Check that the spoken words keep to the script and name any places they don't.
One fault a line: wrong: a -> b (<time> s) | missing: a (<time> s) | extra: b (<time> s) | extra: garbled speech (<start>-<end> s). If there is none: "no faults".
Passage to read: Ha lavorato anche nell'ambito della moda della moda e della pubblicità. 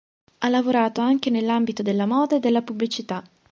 missing: della moda (2.4 s)